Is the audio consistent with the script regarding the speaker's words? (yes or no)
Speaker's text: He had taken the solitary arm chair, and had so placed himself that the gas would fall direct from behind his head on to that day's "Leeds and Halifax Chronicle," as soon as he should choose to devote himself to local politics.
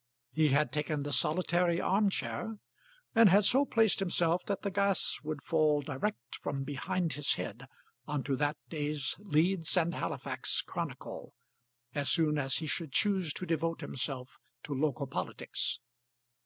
yes